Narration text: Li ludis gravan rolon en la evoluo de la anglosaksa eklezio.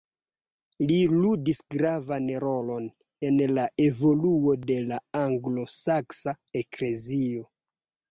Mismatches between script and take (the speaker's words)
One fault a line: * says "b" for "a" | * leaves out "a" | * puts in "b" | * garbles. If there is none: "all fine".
all fine